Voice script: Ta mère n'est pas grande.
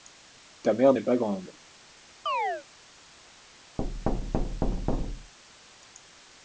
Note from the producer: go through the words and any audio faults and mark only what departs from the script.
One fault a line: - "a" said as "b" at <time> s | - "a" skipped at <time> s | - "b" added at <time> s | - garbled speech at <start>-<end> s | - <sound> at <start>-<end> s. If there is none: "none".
- chirp at 2.3-2.6 s
- thud at 3.8-5.3 s